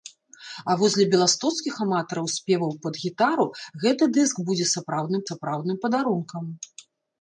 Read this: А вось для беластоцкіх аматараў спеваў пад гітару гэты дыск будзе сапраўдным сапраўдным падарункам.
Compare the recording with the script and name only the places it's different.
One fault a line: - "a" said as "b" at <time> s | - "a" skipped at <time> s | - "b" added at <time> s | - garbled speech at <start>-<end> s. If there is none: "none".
none